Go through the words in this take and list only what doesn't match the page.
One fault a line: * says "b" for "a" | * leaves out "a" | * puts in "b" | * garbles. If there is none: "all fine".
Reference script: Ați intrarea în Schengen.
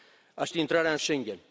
all fine